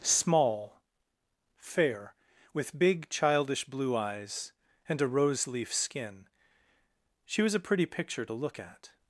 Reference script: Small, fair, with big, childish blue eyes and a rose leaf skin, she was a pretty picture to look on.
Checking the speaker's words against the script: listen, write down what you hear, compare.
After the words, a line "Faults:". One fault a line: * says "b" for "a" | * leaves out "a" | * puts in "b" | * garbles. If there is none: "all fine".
Small, fair, with big, childish blue eyes and a rose leaf skin, she was a pretty picture to look at.
Faults:
* says "at" for "on"